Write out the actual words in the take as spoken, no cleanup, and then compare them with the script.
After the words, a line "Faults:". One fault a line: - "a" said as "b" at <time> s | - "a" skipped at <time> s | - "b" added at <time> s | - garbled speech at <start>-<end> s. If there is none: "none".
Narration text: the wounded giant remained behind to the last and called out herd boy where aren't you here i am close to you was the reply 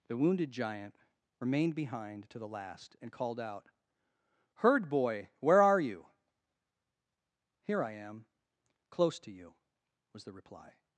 the wounded giant remained behind to the last and called out herd boy where are you here i am close to you was the reply
Faults:
- "aren't" said as "are" at 5.6 s